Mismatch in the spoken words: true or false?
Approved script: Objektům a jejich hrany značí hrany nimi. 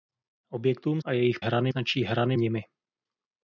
false